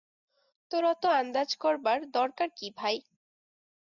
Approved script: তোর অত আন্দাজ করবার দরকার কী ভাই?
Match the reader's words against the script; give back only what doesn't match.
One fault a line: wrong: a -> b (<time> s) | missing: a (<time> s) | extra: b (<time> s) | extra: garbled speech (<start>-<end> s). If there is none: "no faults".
no faults